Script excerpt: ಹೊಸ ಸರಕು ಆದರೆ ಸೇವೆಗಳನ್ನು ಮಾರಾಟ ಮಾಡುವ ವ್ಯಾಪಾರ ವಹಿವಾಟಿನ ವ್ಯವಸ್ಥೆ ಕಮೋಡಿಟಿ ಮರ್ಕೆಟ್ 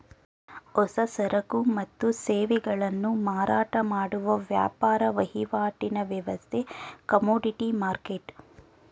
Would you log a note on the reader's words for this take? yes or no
yes